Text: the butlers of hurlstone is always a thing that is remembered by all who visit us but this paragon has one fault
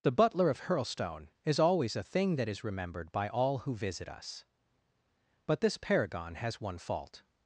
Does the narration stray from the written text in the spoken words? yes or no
yes